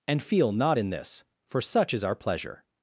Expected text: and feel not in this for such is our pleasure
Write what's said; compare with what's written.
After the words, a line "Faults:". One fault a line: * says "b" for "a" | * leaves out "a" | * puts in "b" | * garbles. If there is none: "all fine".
and feel not in this for such is our pleasure
Faults:
all fine